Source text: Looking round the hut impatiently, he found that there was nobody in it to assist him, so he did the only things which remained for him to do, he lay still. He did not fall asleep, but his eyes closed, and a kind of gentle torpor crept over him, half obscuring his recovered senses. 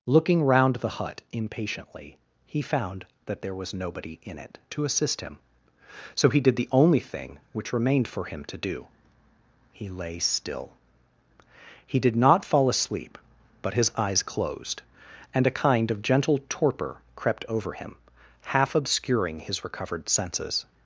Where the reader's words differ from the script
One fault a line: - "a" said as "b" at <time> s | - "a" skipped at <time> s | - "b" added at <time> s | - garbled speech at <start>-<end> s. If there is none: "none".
- "things" said as "thing" at 7.0 s